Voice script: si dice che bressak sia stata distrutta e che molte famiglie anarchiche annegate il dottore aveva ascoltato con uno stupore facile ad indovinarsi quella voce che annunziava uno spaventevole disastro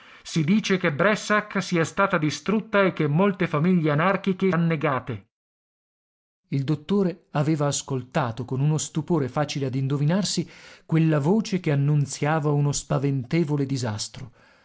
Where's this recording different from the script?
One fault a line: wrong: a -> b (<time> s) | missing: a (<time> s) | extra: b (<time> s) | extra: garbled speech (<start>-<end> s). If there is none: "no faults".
no faults